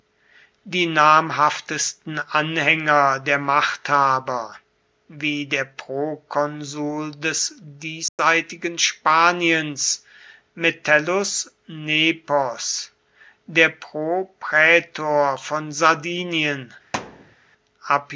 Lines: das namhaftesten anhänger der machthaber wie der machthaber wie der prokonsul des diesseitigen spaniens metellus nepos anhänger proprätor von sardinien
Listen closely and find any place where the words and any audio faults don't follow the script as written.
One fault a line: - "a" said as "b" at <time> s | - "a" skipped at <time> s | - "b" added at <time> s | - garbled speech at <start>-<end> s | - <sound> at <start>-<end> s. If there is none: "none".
- "das" said as "die" at 0.6 s
- "machthaber wie der" skipped at 5.7 s
- dropout at 8.1-8.2 s
- "anhänger" said as "der" at 13.5 s
- thud at 16.9-17.4 s